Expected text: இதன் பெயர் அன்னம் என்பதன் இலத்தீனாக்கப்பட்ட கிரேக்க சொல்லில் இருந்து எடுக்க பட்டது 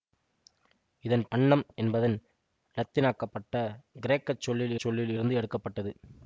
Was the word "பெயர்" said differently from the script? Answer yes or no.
yes